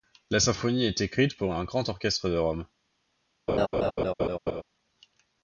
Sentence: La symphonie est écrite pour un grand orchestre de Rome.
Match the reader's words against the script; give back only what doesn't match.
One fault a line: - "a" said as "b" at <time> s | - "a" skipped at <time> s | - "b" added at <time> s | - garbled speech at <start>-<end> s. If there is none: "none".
none